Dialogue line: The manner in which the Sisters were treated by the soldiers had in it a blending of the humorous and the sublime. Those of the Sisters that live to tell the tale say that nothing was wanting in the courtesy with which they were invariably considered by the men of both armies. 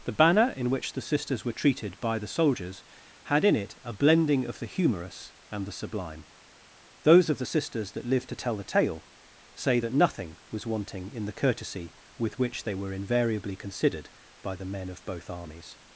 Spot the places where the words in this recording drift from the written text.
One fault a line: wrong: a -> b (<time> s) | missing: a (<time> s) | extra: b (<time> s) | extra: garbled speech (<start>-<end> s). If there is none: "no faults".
wrong: manner -> banner (0.1 s)